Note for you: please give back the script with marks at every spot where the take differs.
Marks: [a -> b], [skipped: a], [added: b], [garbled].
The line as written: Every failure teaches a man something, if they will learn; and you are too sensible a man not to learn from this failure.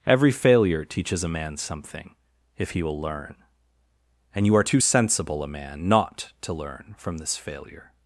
Every failure teaches a man something, if [they -> he] will learn; and you are too sensible a man not to learn from this failure.